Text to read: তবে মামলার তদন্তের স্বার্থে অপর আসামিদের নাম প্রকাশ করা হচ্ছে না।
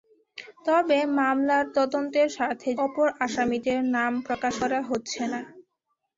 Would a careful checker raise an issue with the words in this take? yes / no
no